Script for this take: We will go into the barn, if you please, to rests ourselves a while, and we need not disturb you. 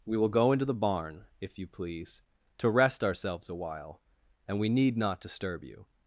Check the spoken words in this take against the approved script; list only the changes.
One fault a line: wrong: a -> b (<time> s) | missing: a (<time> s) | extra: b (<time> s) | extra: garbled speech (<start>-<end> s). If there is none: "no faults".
wrong: rests -> rest (2.7 s)